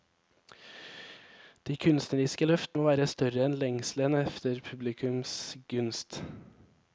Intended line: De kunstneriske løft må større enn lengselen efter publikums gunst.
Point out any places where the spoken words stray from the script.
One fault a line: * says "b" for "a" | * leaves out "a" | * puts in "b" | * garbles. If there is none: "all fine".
* puts in "være"